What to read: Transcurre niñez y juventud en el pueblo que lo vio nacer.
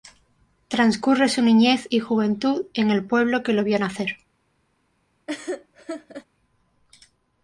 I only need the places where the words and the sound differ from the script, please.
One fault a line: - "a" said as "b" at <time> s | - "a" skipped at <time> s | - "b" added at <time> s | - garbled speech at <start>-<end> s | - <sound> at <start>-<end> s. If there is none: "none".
- "su" added at 1.3 s
- laugh at 5.3-6.3 s